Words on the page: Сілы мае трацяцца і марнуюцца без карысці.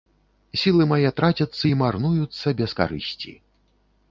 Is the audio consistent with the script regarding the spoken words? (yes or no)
yes